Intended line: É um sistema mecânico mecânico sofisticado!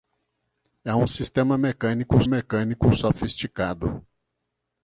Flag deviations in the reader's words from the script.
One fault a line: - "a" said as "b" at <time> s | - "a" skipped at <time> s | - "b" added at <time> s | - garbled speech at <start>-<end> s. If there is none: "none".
none